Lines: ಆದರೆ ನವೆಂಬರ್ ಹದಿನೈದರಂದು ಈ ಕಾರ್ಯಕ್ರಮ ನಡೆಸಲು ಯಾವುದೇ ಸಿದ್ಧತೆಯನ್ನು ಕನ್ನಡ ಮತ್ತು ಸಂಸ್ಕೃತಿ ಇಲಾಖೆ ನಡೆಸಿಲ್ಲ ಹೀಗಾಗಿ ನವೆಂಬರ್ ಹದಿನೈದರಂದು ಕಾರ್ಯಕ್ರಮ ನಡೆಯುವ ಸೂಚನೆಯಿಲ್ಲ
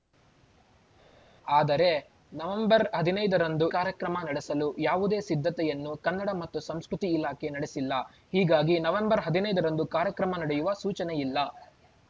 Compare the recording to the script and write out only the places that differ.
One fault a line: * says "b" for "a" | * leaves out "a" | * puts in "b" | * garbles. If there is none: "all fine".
* leaves out "ಈ"